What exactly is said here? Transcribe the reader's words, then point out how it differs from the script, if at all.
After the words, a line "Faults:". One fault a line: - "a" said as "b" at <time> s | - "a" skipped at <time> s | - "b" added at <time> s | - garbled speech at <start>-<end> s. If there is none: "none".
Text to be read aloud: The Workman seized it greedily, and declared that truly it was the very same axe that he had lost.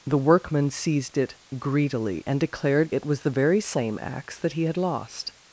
The Workman seized it greedily, and declared it was the very same axe that he had lost.
Faults:
- "that truly" skipped at 2.9 s